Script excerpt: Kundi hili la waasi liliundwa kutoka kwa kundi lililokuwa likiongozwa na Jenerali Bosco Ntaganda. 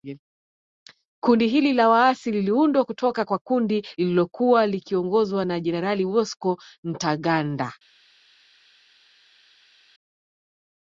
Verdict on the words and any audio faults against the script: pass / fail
pass